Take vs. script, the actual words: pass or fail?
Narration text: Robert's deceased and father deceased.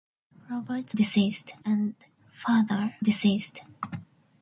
pass